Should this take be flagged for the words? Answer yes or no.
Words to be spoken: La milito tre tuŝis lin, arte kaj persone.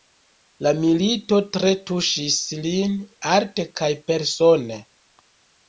no